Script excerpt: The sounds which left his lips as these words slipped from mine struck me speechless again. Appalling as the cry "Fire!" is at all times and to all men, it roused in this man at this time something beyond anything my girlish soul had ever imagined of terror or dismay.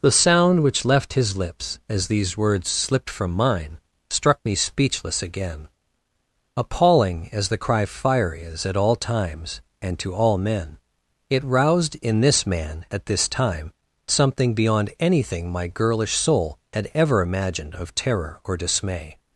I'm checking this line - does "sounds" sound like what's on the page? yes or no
no